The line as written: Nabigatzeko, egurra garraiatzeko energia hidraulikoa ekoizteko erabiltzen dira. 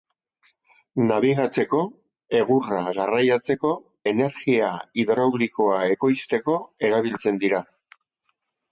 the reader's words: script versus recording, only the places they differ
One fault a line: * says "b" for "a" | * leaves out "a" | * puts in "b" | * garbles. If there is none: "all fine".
all fine